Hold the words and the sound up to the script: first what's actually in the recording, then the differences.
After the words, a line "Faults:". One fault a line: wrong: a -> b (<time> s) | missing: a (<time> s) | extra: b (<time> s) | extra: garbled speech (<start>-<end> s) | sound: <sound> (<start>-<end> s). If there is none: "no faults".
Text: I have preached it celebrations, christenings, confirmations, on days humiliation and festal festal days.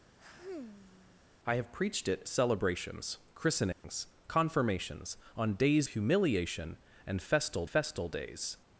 I have preached it celebrations, christenings, confirmations, on days humiliation and festal festal days.
Faults:
sound: sigh (0.2-1.2 s)
sound: dropout (3.7-3.8 s)